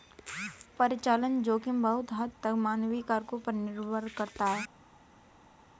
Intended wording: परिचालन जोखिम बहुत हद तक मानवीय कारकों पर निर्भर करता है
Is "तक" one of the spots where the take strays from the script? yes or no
no